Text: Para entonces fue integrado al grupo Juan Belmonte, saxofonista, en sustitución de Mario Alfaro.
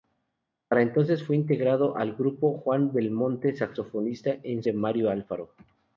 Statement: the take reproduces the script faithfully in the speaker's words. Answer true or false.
false